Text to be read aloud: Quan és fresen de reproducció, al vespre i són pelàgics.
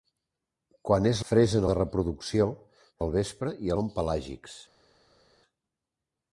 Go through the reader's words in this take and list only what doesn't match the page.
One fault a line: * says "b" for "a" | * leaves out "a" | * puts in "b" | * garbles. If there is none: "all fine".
all fine